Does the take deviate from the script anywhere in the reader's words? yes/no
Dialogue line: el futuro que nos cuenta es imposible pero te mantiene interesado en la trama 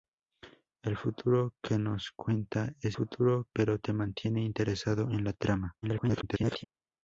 yes